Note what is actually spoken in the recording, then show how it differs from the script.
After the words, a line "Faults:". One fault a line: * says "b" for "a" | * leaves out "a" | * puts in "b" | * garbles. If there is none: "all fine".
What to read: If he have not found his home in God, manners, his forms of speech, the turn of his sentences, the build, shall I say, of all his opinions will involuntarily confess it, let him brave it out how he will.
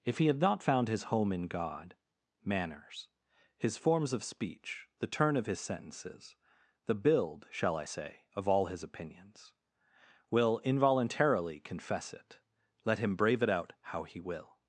If he have not found his home in God, manners, his forms of speech, the turn of his sentences, the build, shall I say, of all his opinions will involuntarily confess it, let him brave it out how he will.
Faults:
all fine